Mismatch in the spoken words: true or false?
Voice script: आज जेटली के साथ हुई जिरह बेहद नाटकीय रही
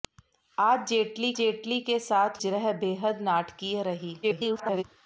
true